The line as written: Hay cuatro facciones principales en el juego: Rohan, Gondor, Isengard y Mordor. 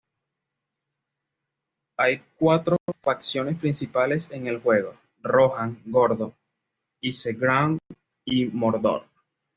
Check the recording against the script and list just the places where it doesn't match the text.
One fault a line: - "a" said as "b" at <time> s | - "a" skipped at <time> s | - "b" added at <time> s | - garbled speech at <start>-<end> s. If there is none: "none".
none